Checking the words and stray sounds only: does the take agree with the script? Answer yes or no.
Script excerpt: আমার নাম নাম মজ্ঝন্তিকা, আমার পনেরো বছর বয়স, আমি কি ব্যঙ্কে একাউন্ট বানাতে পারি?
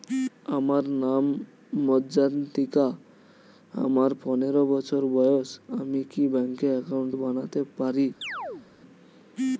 no